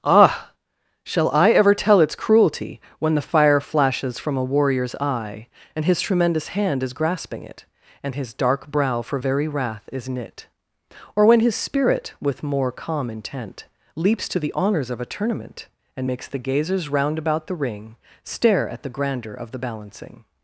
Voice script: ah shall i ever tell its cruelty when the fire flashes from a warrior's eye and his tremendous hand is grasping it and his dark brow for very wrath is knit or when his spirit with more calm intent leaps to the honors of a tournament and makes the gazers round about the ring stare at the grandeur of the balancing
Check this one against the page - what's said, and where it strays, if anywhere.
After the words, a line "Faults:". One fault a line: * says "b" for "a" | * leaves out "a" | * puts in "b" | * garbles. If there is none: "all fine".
ah shall i ever tell its cruelty when the fire flashes from a warrior's eye and his tremendous hand is grasping it and his dark brow for very wrath is knit or when his spirit with more calm intent leaps to the honors of a tournament and makes the gazers round about the ring stare at the grandeur of the balancing
Faults:
all fine